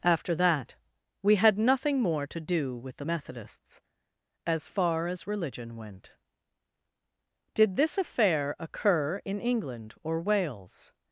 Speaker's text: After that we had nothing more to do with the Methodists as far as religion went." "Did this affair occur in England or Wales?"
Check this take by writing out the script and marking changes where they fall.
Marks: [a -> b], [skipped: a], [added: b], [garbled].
After that we had nothing more to do with the Methodists as far as religion went." "Did this affair occur in England or Wales?"